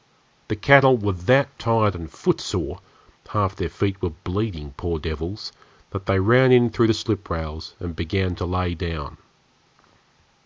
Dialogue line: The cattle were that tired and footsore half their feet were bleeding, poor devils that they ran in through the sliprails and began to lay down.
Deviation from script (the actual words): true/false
false